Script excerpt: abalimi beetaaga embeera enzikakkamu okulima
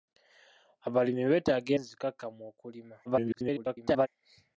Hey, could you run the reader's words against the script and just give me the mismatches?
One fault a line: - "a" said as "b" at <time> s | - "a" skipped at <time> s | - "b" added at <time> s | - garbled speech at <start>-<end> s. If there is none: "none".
- "embeera" skipped at 1.7 s
- garbled speech at 3.1-4.1 s